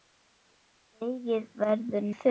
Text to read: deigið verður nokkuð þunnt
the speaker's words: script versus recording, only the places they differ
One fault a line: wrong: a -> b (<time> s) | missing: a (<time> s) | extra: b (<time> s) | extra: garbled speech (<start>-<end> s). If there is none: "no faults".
missing: nokkuð (2.1 s)